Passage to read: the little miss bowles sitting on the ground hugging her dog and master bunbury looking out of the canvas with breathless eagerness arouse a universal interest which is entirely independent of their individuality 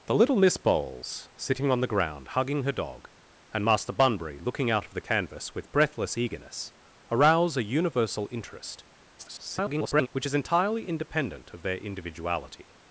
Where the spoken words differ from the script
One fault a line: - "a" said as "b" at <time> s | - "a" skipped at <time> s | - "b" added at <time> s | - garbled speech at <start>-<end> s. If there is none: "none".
- garbled speech at 9.2-10.1 s